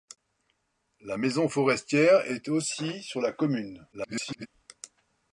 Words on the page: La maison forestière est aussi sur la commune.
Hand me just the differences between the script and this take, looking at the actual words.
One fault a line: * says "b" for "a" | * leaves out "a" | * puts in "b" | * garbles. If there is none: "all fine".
* garbles